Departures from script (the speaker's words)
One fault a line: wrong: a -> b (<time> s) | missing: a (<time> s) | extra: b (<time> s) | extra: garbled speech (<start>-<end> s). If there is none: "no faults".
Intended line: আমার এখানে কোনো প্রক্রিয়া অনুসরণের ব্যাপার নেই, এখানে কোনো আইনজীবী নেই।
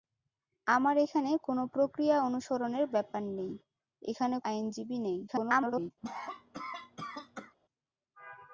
missing: কোনো (4.3 s)
extra: garbled speech (5.3-5.9 s)